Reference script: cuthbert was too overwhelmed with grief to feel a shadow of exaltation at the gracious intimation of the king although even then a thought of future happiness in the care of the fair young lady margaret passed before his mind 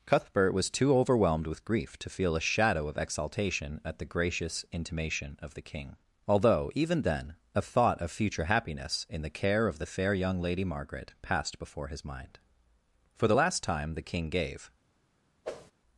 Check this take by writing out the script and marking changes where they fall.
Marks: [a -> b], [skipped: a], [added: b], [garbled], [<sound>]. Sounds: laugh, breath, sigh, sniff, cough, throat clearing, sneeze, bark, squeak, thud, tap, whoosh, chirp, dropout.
cuthbert was too overwhelmed with grief to feel a shadow of exaltation at the gracious intimation of the king although even then a thought of future happiness in the care of the fair young lady margaret passed before his mind [added: for the last time the king gave] [whoosh]